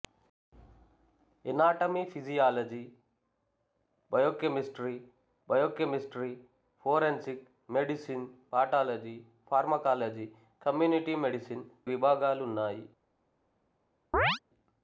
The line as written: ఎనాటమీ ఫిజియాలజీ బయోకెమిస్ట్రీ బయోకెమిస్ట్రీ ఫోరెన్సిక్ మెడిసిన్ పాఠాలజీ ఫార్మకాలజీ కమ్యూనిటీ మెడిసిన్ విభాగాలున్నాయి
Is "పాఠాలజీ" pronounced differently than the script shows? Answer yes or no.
no